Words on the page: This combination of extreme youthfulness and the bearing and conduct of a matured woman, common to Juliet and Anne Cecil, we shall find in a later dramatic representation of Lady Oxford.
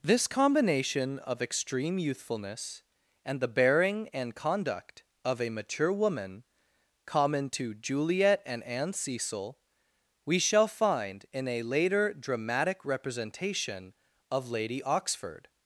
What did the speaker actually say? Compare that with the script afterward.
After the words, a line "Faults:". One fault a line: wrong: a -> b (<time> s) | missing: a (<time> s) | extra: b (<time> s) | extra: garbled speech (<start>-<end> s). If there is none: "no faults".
This combination of extreme youthfulness and the bearing and conduct of a mature woman, common to Juliet and Anne Cecil, we shall find in a later dramatic representation of Lady Oxford.
Faults:
wrong: matured -> mature (5.5 s)